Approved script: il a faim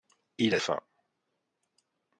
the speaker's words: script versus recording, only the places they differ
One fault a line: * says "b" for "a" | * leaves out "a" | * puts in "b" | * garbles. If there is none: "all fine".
all fine